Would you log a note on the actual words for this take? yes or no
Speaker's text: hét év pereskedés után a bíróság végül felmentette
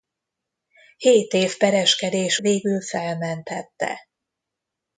yes